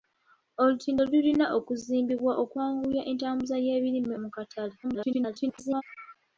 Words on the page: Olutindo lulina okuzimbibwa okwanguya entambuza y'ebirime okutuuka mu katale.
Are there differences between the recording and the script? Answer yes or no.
yes